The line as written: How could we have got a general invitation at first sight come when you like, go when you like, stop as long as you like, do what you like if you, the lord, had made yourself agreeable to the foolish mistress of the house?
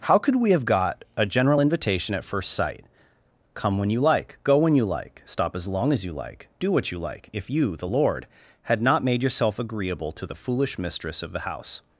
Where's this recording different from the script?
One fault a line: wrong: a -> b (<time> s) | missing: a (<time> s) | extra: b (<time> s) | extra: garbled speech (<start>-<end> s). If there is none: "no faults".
extra: not (8.8 s)